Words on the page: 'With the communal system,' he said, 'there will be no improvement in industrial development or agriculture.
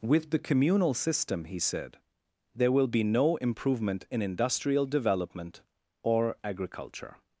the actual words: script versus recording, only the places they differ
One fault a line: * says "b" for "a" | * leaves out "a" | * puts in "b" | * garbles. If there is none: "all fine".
all fine